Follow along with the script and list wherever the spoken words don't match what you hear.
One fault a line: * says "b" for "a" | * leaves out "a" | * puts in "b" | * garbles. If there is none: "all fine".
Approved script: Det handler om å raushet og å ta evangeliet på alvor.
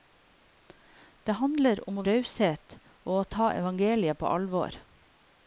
all fine